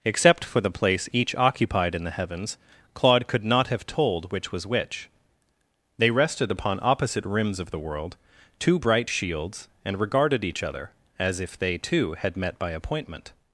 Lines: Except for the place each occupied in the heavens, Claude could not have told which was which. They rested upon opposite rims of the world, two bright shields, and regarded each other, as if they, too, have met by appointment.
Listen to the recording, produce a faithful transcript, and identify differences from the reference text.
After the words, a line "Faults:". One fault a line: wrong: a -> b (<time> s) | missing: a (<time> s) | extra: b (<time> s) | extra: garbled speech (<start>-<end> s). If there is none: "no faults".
Except for the place each occupied in the heavens, Claude could not have told which was which. They rested upon opposite rims of the world, two bright shields, and regarded each other, as if they, too, had met by appointment.
Faults:
wrong: have -> had (12.1 s)